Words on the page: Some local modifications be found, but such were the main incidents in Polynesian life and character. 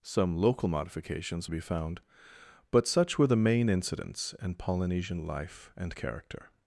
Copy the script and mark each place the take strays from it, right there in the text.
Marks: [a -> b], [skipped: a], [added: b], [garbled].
Some local modifications be found, but such were the main incidents in Polynesian life and character.